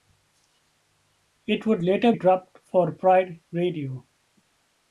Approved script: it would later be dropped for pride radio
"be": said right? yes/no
no